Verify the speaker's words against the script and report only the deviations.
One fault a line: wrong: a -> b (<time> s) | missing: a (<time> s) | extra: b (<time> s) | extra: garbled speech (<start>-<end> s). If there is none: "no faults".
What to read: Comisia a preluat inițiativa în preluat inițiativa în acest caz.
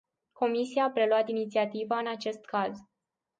missing: preluat inițiativa în (2.1 s)